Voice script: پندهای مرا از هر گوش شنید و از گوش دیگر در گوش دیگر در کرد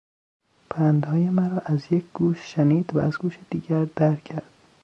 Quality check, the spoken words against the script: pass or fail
fail